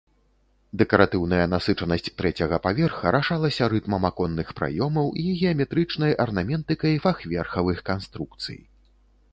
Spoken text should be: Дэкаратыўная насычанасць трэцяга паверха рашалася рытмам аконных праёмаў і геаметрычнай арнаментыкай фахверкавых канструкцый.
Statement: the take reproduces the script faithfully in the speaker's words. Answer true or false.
true